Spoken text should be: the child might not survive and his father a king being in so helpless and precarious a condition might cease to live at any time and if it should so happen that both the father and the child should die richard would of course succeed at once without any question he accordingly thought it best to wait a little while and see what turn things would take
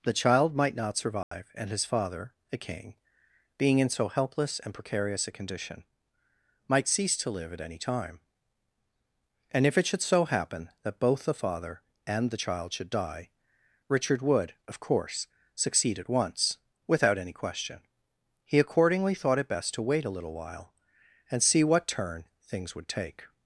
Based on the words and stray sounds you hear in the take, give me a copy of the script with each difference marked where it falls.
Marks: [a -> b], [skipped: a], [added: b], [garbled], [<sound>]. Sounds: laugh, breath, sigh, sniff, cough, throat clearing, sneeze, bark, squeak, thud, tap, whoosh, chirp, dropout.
the child might not survive [dropout] and his father a king being in so helpless and precarious a condition might cease to live at any time and if it should so happen that both the father and the child should die richard would of course succeed at once without any question he accordingly thought it best to wait a little while and see what turn things would take